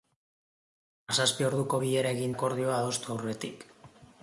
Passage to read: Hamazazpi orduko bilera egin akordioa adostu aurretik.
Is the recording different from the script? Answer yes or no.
no